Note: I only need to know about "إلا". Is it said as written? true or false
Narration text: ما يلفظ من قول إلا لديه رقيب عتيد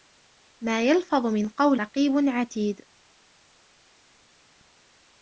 false